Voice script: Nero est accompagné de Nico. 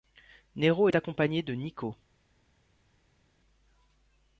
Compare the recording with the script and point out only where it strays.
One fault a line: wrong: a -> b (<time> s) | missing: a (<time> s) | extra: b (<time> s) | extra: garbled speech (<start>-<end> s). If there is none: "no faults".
no faults